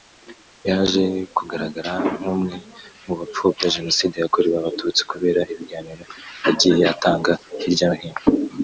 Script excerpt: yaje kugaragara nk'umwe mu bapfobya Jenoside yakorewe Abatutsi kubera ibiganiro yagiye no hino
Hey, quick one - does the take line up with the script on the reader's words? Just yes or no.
no